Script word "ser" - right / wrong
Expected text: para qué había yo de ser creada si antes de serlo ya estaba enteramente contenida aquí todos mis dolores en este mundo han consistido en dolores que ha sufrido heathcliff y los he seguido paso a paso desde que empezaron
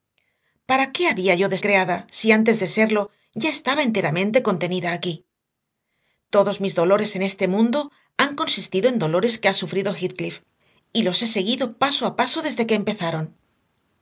wrong